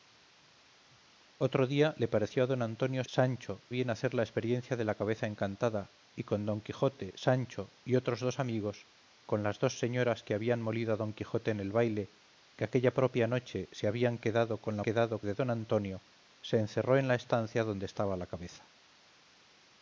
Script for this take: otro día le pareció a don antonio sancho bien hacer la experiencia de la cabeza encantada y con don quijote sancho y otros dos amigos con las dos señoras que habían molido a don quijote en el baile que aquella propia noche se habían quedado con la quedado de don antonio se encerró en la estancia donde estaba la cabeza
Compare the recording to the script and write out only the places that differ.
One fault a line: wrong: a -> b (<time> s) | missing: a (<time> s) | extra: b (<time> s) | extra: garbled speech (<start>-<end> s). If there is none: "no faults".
no faults